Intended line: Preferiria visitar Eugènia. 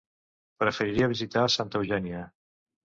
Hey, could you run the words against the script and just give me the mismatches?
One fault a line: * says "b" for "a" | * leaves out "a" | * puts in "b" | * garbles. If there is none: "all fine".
* puts in "Santa"